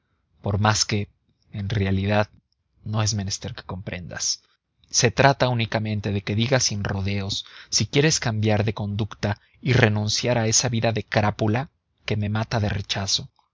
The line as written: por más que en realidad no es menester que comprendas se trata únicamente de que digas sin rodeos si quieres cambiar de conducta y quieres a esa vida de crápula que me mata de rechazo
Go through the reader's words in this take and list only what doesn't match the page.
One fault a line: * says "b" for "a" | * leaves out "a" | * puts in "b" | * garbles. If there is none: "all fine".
* says "renunciar" for "quieres"